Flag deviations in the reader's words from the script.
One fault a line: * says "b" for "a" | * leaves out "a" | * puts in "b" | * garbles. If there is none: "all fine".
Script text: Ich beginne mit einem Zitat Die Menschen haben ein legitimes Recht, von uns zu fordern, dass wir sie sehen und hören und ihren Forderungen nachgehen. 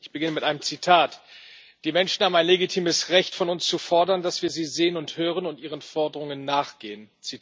all fine